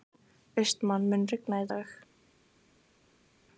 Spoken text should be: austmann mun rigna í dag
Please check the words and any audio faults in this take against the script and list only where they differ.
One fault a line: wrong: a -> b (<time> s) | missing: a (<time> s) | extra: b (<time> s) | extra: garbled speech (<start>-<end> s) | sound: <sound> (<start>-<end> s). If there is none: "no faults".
no faults